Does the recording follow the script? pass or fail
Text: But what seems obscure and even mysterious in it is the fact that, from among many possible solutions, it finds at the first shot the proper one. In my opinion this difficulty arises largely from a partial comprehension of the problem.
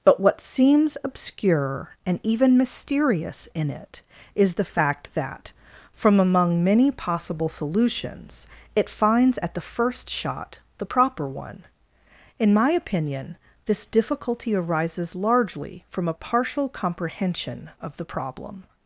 pass